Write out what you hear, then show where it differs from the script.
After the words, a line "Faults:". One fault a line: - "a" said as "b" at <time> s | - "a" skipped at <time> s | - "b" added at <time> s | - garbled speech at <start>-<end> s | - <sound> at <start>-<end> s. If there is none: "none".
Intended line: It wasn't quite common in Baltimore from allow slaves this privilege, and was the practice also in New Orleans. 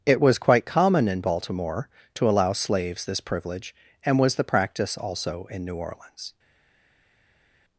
It was quite common in Baltimore to allow slaves this privilege, and was the practice also in New Orleans.
Faults:
- "wasn't" said as "was" at 0.2 s
- "from" said as "to" at 2.1 s